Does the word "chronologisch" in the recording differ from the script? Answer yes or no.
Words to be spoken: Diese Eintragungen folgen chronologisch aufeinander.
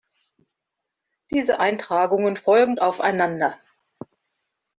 yes